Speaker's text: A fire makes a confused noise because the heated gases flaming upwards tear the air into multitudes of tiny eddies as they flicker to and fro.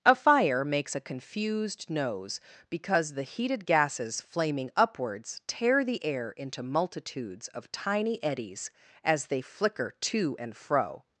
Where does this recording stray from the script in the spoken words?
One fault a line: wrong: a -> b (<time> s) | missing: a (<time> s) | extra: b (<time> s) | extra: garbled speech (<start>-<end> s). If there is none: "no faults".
wrong: noise -> nose (1.9 s)